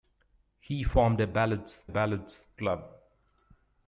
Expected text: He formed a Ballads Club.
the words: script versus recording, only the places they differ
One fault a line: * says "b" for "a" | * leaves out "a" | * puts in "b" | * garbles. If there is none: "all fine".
* puts in "Ballads"